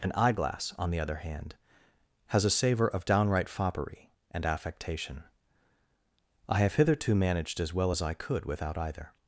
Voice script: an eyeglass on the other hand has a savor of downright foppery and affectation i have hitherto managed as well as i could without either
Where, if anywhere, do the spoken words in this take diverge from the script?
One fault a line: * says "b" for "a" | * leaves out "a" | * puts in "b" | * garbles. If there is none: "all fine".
all fine